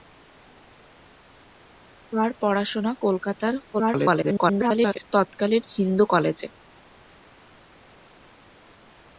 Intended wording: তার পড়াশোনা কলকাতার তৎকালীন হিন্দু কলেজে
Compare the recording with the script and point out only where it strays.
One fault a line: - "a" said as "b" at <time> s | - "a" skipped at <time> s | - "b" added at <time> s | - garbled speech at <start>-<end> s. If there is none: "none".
- garbled speech at 3.7-5.0 s